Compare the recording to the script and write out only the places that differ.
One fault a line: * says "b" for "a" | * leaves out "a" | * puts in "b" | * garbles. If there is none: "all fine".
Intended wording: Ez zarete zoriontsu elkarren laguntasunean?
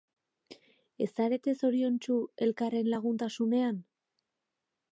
all fine